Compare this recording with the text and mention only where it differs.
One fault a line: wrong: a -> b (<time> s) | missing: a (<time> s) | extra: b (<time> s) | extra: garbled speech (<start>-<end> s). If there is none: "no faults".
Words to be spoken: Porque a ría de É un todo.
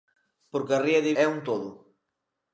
no faults